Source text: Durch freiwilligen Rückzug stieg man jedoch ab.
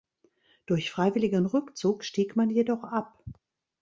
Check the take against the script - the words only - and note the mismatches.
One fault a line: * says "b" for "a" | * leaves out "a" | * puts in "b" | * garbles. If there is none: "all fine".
all fine